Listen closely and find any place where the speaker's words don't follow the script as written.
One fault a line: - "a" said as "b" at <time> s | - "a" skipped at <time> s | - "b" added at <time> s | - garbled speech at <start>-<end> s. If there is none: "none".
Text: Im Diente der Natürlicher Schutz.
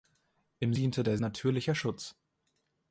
none